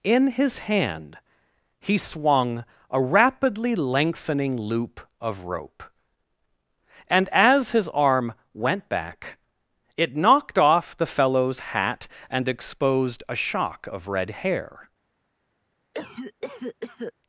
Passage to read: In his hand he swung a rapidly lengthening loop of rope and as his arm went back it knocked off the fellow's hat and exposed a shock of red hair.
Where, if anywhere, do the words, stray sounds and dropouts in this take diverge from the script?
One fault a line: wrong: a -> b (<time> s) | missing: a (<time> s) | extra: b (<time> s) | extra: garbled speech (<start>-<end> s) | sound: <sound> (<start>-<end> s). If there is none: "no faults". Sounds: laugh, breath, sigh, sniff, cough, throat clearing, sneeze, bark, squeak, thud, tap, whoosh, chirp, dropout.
sound: cough (15.9-17.1 s)